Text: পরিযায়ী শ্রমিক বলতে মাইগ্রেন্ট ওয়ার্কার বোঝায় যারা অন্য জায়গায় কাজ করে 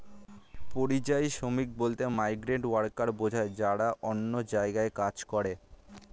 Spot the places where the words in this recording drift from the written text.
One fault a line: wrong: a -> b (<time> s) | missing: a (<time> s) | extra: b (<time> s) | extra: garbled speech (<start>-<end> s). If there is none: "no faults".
no faults